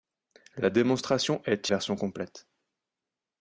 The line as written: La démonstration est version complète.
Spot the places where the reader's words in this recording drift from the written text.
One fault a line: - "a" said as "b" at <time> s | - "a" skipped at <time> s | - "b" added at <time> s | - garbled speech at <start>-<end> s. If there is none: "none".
none